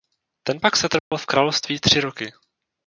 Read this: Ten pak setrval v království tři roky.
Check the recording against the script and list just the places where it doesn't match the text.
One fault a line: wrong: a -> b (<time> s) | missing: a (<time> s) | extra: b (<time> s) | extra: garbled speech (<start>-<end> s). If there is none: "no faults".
no faults